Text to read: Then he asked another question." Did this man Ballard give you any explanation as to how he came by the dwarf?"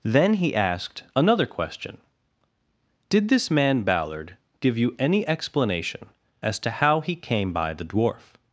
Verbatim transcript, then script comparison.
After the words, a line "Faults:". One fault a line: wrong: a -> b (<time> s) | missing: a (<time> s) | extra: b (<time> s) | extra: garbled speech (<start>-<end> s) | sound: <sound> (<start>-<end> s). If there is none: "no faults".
Then he asked another question." Did this man Ballard give you any explanation as to how he came by the dwarf?"
Faults:
no faults